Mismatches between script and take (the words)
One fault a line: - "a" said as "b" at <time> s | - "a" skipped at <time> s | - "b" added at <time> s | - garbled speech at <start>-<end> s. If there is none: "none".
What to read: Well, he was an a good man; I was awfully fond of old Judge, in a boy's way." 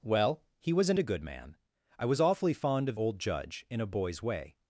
none